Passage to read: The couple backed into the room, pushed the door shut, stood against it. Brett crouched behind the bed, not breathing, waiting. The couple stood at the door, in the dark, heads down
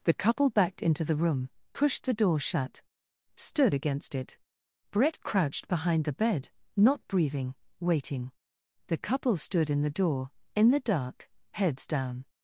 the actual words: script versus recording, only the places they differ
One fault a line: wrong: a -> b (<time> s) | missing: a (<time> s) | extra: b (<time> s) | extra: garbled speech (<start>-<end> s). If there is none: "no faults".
wrong: at -> in (9.7 s)